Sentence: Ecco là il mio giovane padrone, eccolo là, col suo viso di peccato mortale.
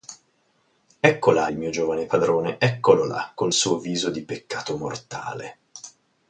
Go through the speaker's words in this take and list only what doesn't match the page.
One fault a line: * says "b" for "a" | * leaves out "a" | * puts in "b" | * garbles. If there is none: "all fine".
all fine